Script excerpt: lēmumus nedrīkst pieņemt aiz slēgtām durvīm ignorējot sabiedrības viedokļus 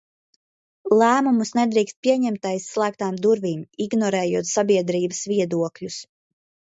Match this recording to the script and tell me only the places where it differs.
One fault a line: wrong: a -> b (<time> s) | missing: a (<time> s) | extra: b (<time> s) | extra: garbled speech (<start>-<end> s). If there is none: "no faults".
no faults